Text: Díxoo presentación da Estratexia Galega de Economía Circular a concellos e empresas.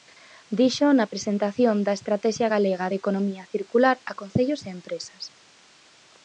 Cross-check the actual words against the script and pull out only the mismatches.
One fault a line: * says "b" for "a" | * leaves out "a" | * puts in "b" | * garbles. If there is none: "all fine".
* puts in "na"